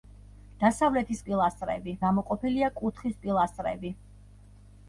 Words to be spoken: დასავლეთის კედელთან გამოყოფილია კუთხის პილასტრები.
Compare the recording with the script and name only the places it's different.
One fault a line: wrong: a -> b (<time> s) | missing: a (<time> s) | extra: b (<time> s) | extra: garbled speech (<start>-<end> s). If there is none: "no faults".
wrong: კედელთან -> პილასტრები (1.3 s)